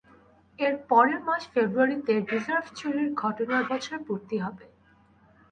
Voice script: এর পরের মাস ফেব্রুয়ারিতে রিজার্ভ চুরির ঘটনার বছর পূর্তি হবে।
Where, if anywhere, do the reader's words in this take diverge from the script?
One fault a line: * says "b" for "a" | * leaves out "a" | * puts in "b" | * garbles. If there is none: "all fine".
all fine